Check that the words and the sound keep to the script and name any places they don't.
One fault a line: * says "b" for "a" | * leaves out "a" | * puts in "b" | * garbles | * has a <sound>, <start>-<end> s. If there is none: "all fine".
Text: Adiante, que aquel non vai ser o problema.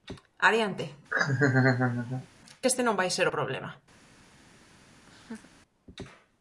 * has a laugh, 1.1-2.3 s
* says "este" for "aquel"
* has a laugh, 5.1-5.5 s